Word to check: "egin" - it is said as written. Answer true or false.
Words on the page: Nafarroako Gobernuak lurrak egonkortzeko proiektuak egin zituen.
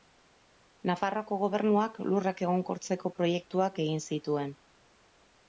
true